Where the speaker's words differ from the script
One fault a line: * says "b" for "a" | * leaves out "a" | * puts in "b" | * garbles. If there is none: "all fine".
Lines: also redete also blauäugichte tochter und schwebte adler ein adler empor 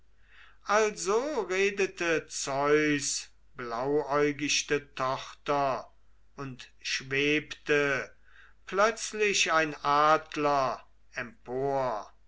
* says "zeus" for "also"
* says "plötzlich" for "adler"